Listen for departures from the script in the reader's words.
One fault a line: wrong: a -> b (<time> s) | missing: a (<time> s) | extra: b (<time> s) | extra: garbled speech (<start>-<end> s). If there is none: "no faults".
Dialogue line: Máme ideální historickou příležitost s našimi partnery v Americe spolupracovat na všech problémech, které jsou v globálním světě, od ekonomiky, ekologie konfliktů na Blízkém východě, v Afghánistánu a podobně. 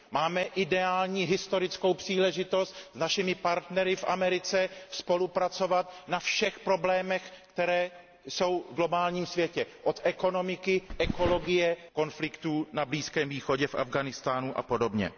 no faults